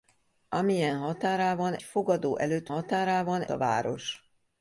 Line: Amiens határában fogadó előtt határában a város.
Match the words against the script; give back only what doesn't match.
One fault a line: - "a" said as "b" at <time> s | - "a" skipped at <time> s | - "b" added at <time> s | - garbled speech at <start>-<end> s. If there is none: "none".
none